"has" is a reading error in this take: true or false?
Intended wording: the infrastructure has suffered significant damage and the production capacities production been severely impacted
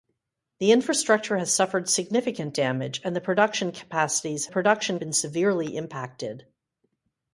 false